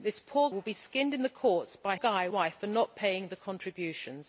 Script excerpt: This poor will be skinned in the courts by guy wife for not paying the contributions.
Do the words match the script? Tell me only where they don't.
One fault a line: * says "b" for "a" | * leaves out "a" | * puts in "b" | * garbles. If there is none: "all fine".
all fine